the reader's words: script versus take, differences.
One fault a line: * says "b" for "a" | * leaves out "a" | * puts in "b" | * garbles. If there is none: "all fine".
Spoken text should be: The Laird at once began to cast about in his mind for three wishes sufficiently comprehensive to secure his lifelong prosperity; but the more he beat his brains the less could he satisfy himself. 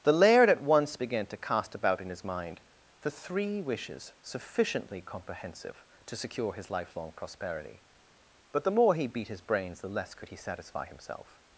all fine